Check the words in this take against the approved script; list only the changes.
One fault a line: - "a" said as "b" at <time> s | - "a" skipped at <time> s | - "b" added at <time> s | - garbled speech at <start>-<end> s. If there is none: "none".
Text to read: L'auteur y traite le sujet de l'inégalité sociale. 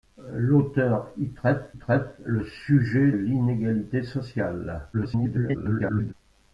- "traite" added at 1.7 s
- "de" skipped at 3.1 s
- garbled speech at 4.9-6.1 s